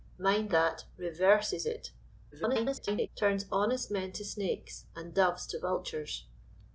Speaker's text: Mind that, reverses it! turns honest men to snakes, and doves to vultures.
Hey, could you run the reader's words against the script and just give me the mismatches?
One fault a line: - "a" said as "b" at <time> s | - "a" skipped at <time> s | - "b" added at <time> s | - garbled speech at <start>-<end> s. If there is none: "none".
- garbled speech at 2.3-3.1 s